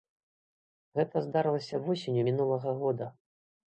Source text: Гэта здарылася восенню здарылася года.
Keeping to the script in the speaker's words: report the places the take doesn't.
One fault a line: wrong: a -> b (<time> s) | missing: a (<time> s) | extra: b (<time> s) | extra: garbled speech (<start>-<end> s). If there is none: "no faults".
wrong: здарылася -> мінулага (2.3 s)